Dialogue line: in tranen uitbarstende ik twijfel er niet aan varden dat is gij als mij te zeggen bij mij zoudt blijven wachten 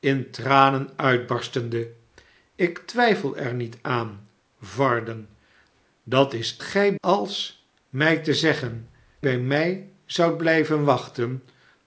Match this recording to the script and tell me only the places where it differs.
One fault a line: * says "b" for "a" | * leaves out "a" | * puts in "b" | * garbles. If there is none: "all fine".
all fine